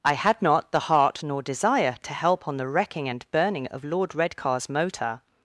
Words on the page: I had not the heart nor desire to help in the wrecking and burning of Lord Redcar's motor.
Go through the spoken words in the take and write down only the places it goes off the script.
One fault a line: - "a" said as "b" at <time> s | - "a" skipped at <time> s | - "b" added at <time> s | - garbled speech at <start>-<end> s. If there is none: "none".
- "in" said as "on" at 2.5 s